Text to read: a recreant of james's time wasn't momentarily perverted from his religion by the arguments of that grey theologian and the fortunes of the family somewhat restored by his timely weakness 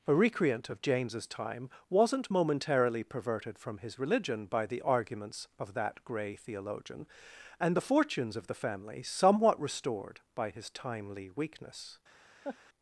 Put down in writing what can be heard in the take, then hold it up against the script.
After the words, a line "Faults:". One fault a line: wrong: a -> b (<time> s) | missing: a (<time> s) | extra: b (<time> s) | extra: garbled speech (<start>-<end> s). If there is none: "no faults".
a recreant of james's time wasn't momentarily perverted from his religion by the arguments of that grey theologian and the fortunes of the family somewhat restored by his timely weakness
Faults:
no faults